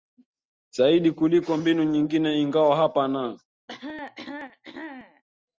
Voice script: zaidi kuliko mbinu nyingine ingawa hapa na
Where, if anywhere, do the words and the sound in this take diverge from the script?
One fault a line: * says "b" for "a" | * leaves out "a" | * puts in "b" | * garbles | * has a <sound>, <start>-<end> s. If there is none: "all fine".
* has a cough, 3.7-5.2 s